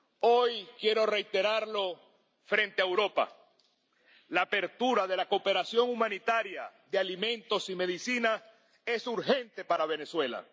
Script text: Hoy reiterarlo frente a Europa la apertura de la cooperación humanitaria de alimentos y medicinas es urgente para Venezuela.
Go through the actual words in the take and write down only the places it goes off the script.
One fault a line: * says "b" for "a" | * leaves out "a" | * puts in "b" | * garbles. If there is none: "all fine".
* puts in "quiero"